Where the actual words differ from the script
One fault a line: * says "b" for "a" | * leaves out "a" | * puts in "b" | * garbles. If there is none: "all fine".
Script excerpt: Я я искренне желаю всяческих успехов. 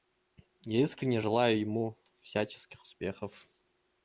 * leaves out "я"
* puts in "ему"